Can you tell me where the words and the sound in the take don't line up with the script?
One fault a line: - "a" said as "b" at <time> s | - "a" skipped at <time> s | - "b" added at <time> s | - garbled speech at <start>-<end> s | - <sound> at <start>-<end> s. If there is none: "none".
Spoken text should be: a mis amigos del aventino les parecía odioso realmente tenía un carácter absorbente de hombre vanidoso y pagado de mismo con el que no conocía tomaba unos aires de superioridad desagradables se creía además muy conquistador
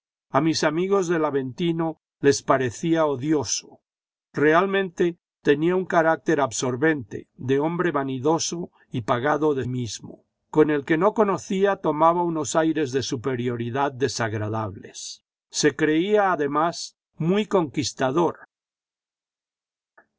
none